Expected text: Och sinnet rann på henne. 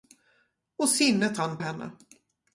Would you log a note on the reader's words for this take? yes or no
yes